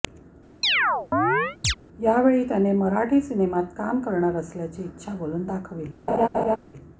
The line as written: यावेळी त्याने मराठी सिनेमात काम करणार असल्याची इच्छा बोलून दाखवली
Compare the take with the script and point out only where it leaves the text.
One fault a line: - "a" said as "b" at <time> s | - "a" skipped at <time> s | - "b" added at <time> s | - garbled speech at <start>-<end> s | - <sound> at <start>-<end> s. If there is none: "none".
- chirp at 0.6-1.7 s
- laugh at 6.1-6.6 s